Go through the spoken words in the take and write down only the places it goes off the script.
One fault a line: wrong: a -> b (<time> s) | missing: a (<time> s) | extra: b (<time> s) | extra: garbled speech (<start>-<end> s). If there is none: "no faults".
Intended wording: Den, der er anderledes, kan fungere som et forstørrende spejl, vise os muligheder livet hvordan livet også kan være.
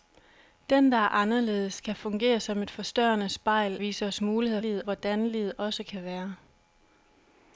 no faults